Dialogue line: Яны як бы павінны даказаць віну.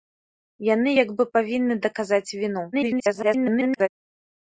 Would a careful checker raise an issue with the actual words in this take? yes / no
yes